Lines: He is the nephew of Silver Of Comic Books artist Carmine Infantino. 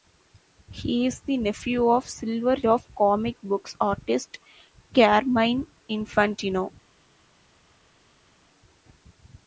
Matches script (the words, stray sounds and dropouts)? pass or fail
pass